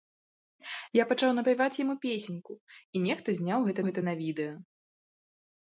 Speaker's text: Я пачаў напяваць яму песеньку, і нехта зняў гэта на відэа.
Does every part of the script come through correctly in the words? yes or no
no